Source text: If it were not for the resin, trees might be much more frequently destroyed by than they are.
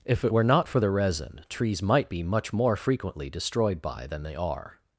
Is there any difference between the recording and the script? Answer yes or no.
no